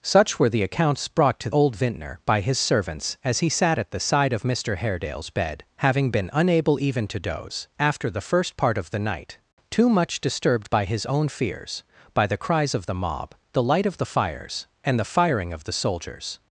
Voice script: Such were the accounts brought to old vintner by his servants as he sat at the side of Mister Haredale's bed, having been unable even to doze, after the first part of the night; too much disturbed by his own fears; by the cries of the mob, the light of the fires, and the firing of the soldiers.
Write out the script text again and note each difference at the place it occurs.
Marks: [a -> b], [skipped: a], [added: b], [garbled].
Such were the accounts brought to old vintner by his servants as he sat at the side of Mister Haredale's bed, having been unable even to doze, after the first part of the night; too much disturbed by his own fears; by the cries of the mob, the light of the fires, and the firing of the soldiers.